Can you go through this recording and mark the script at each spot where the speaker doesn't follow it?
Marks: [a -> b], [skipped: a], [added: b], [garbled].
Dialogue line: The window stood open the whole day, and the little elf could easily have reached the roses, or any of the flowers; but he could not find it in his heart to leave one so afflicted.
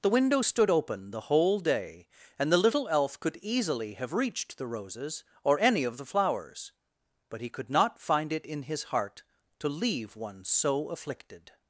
The window stood open the whole day, and the little elf could easily have reached the roses, or any of the flowers; but he could not find it in his heart to leave one so afflicted.